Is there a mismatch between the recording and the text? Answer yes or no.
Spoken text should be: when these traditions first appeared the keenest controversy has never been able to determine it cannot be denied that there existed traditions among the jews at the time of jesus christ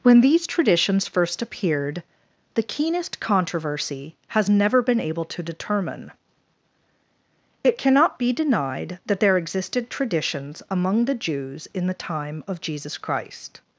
yes